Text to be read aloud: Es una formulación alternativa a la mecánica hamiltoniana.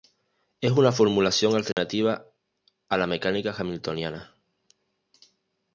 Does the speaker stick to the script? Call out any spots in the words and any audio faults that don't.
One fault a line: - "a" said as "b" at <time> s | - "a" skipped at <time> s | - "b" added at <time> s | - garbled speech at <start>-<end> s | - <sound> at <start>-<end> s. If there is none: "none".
- dropout at 1.7-1.8 s